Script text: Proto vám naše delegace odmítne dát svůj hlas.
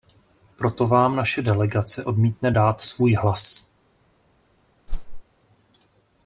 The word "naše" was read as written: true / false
true